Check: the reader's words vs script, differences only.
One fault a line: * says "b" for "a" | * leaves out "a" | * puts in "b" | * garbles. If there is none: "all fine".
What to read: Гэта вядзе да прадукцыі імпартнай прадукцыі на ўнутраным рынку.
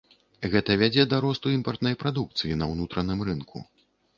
* says "росту" for "прадукцыі"